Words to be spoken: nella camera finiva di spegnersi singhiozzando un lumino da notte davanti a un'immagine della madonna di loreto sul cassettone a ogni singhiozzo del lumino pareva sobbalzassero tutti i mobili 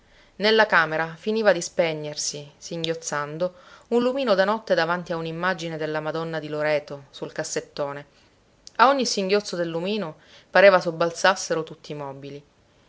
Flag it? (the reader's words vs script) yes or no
no